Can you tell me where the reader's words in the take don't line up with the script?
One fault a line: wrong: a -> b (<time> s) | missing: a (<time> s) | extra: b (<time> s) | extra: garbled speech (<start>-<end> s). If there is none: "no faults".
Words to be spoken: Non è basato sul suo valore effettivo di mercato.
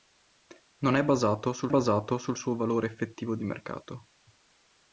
extra: basato sul (1.7 s)